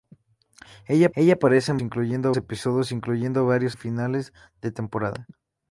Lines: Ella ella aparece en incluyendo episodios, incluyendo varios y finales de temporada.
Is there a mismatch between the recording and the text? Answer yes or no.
no